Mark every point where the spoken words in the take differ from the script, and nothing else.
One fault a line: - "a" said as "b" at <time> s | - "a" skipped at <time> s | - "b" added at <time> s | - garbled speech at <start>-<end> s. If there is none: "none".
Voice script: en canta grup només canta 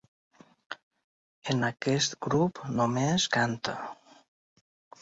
- "canta" said as "aquest" at 1.7 s